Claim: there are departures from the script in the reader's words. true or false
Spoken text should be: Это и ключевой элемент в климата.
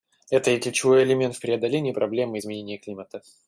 true